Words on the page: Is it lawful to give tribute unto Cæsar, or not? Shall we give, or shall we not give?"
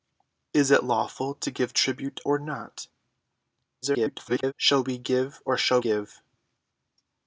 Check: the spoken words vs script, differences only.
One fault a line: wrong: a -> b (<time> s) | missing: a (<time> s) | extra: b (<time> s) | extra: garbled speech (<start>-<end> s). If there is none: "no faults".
missing: unto Cæsar (2.2 s)
extra: garbled speech (3.8-4.5 s)
missing: we not (5.8 s)